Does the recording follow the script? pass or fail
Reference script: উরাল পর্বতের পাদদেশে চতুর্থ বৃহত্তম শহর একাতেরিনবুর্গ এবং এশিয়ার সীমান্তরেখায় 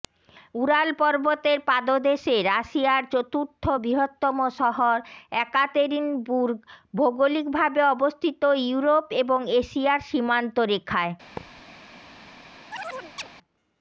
fail